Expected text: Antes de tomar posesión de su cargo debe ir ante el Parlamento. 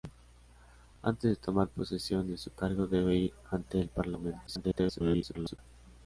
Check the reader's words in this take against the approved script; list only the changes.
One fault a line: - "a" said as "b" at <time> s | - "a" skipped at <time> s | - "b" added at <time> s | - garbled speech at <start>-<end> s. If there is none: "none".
- garbled speech at 4.5-5.6 s